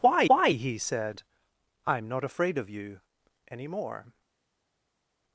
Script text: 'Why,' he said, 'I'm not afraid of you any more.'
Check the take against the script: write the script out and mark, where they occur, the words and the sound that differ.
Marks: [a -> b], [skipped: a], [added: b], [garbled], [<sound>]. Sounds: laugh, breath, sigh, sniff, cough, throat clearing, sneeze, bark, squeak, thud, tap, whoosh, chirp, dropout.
'Why,' [added: why] he said, 'I'm not afraid of you any more.'